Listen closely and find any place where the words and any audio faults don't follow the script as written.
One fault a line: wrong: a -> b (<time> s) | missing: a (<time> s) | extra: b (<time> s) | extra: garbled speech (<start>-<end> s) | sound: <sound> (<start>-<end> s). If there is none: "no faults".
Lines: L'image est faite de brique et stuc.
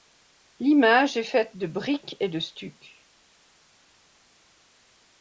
extra: de (2.3 s)